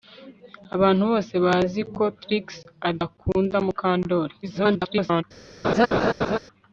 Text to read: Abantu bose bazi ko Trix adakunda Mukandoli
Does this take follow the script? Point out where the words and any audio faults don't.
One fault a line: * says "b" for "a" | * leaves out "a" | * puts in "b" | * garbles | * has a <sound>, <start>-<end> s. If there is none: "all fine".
* garbles
* has a laugh, 5.6-6.4 s